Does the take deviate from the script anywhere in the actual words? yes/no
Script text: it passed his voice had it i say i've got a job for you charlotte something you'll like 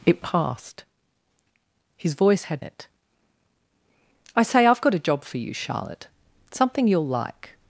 no